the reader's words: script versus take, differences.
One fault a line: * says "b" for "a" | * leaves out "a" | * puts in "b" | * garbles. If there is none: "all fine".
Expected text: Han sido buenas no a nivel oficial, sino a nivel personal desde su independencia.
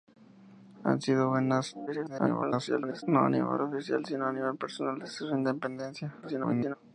* garbles
* garbles